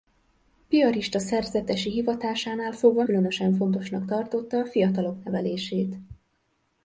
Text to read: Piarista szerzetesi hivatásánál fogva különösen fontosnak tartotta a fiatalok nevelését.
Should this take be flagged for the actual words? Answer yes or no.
no